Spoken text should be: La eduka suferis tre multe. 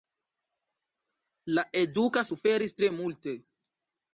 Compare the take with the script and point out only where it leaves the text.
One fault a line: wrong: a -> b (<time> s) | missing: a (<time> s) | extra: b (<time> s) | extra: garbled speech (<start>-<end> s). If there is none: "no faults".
no faults